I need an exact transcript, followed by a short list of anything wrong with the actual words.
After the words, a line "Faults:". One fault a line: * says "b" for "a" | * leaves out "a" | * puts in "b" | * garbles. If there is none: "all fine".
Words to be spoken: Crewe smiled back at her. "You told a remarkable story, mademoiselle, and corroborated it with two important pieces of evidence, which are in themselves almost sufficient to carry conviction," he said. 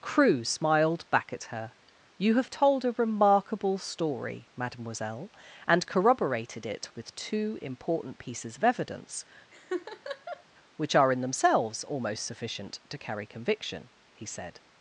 Crewe smiled back at her. "You have told a remarkable story, mademoiselle, and corroborated it with two important pieces of evidence, which are in themselves almost sufficient to carry conviction," he said.
Faults:
* puts in "have"